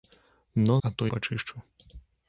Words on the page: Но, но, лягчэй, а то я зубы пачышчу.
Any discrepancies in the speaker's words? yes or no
yes